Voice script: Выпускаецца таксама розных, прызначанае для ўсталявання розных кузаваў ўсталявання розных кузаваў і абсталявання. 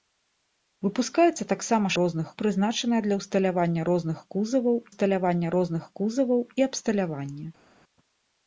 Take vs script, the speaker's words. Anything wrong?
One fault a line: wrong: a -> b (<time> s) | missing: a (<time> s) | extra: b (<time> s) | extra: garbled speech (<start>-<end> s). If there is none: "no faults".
no faults